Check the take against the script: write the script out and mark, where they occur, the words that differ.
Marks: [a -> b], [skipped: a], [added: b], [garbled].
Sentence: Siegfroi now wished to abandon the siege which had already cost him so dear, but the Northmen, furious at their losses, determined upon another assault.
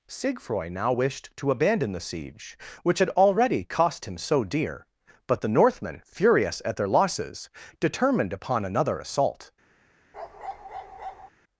Siegfroi now wished to abandon the siege which had already cost him so dear, but the Northmen, furious at their losses, determined upon another assault.